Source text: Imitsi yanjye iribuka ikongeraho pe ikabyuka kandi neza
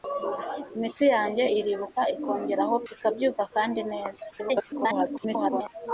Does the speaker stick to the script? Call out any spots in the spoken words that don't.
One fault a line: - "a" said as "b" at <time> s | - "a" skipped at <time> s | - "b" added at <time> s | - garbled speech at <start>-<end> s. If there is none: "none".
- "pe" skipped at 2.8 s
- garbled speech at 4.3-5.7 s